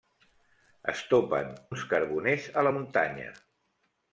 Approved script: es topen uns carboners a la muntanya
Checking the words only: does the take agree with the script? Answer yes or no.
yes